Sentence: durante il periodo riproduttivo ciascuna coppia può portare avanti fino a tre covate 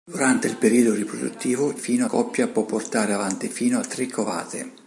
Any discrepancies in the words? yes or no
yes